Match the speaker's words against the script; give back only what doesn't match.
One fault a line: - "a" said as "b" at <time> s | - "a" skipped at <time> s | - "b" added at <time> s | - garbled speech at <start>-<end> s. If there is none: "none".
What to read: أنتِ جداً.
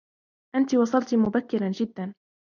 - "وصلتِ مبكراً" added at 0.8 s